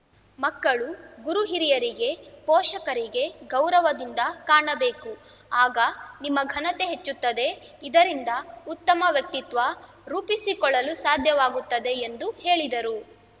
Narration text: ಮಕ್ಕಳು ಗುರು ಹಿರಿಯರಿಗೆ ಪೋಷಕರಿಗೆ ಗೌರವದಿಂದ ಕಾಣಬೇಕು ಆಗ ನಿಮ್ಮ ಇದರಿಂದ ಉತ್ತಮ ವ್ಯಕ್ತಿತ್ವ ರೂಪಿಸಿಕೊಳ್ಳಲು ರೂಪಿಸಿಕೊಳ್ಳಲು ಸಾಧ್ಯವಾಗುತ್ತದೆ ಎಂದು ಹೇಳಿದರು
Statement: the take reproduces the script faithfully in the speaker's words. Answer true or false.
false